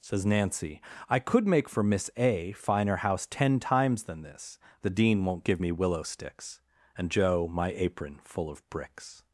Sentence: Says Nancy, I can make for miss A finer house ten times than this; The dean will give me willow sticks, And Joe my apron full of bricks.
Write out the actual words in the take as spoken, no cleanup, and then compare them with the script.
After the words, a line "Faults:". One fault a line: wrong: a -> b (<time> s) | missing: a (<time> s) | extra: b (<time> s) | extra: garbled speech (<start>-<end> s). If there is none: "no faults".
Says Nancy, I could make for miss A finer house ten times than this; The dean won't give me willow sticks, And Joe my apron full of bricks.
Faults:
wrong: can -> could (1.2 s)
wrong: will -> won't (5.2 s)